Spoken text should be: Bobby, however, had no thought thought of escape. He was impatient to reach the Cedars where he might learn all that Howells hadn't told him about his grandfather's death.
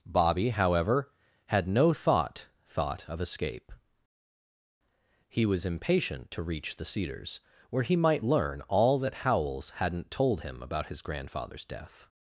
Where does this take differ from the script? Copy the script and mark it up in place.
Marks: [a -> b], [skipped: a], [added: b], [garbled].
Bobby, however, had no thought thought of escape. He was impatient to reach the Cedars where he might learn all that Howells hadn't told him about his grandfather's death.